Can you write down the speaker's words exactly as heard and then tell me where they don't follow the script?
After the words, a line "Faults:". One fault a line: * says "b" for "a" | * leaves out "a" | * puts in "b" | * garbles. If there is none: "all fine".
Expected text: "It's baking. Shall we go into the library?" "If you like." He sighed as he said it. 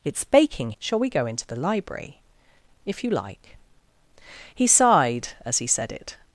"It's baking. Shall we go into the library?" "If you like." He sighed as he said it.
Faults:
all fine